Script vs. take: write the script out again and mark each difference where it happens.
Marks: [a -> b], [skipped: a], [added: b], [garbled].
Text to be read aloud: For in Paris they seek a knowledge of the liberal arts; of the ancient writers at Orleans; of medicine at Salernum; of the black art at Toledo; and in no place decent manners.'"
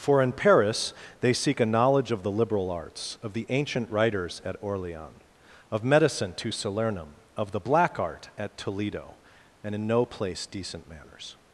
For in Paris they seek a knowledge of the liberal arts; of the ancient writers at Orleans; of medicine [at -> to] Salernum; of the black art at Toledo; and in no place decent manners.'"